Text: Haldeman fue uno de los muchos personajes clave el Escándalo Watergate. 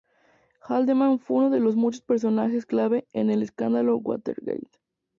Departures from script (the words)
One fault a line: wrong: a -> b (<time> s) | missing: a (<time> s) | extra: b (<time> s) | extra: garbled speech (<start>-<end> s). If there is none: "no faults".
extra: en (3.1 s)